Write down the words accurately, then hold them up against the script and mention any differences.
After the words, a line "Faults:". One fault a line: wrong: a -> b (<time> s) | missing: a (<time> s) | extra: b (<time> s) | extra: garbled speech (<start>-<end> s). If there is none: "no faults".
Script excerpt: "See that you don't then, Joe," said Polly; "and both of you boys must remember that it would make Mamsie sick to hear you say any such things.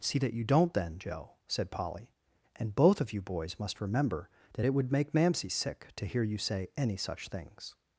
"See that you don't then, Joe," said Polly; "and both of you boys must remember that it would make Mamsie sick to hear you say any such things.
Faults:
no faults